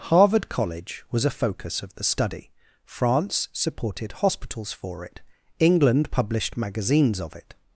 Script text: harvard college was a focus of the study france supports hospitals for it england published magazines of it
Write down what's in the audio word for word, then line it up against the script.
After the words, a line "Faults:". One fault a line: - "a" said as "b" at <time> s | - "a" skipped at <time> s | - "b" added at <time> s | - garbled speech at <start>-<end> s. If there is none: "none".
harvard college was a focus of the study france supported hospitals for it england published magazines of it
Faults:
- "supports" said as "supported" at 3.5 s